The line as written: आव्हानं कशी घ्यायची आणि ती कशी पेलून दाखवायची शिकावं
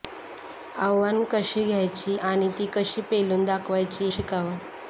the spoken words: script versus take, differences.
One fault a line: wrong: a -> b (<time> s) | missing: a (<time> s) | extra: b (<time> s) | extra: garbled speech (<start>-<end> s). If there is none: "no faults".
no faults